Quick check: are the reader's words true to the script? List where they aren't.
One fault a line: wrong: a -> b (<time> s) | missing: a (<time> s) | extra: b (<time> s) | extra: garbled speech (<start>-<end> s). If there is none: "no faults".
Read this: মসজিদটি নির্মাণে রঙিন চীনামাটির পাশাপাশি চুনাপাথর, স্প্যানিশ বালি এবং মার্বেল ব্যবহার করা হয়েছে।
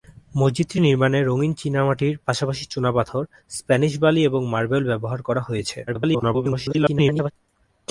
extra: garbled speech (5.9-7.3 s)